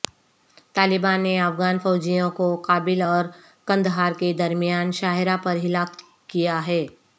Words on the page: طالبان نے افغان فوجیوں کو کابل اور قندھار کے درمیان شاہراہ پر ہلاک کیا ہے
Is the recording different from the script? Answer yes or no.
no